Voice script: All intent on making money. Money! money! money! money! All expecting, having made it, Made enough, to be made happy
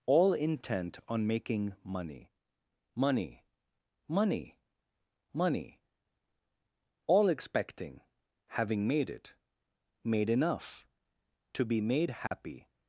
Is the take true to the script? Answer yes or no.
no